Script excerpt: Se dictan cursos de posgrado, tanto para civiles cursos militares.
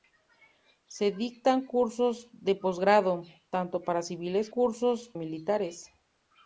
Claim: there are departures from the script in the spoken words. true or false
false